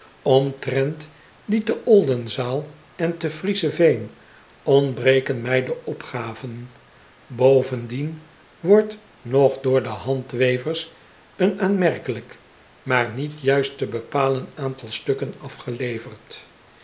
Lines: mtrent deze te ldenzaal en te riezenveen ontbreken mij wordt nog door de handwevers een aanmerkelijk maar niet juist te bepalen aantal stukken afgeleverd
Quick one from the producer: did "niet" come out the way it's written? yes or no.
yes